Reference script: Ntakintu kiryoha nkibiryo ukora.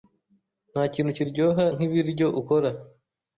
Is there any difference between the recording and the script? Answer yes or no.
no